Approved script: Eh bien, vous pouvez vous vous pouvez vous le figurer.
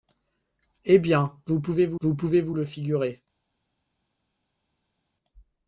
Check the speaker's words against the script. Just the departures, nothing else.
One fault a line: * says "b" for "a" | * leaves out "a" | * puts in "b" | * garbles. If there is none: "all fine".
all fine